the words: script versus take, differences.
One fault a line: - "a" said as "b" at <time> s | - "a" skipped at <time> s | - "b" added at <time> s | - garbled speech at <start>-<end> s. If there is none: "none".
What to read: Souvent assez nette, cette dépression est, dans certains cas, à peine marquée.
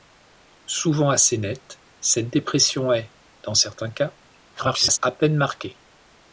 - garbled speech at 4.5-5.0 s